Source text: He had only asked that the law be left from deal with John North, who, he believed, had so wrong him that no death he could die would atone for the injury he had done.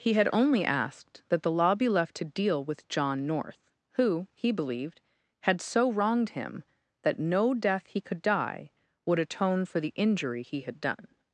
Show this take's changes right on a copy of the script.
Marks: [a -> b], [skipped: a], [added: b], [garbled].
He had only asked that the law be left [from -> to] deal with John North, who, he believed, had so [wrong -> wronged] him that no death he could die would atone for the injury he had done.